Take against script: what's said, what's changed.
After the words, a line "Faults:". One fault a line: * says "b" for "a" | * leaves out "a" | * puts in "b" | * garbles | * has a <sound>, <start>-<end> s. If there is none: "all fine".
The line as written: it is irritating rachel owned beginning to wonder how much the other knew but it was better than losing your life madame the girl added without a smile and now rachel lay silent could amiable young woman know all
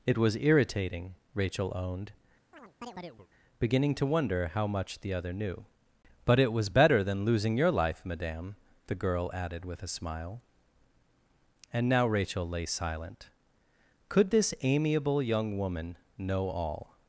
it was irritating rachel owned beginning to wonder how much the other knew but it was better than losing your life madame the girl added with a smile and now rachel lay silent could this amiable young woman know all
Faults:
* says "was" for "is"
* has a chirp, 2.5-3.3 s
* says "with" for "without"
* puts in "this"